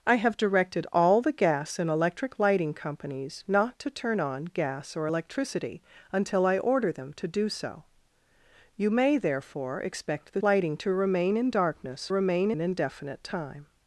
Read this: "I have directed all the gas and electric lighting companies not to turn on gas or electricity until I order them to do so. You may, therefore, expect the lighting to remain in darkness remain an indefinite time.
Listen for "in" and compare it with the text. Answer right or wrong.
right